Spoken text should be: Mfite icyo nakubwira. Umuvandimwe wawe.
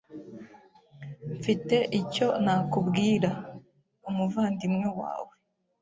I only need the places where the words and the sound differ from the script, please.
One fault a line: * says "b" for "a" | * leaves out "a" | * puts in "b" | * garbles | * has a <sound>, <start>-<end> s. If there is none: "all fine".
all fine